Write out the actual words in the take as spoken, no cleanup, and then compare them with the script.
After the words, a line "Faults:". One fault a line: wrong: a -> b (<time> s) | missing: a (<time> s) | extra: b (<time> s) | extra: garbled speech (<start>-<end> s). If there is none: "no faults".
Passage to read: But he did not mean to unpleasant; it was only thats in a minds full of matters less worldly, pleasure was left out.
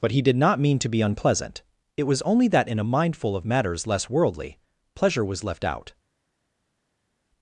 But he did not mean to be unpleasant; it was only that in a mind full of matters less worldly, pleasure was left out.
Faults:
extra: be (0.9 s)
wrong: thats -> that (2.5 s)
wrong: minds -> mind (2.8 s)